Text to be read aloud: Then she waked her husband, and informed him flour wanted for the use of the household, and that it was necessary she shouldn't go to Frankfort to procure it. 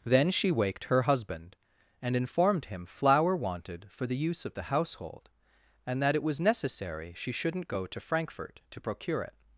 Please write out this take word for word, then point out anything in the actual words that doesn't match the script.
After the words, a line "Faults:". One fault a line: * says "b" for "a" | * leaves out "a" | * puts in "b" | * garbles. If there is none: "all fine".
Then she waked her husband, and informed him flour wanted for the use of the household, and that it was necessary she shouldn't go to Frankfort to procure it.
Faults:
all fine